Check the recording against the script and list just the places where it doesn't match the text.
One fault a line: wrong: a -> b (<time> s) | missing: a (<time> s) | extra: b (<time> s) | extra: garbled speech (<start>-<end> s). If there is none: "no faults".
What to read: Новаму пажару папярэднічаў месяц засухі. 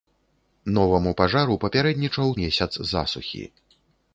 no faults